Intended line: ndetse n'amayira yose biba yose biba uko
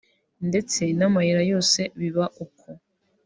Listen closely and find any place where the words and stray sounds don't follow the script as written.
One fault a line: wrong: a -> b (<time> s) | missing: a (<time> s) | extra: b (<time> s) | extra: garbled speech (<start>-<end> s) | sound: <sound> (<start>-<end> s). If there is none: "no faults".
missing: yose biba (2.2 s)